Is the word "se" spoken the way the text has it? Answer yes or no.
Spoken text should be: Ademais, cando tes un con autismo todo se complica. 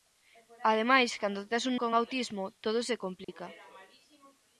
yes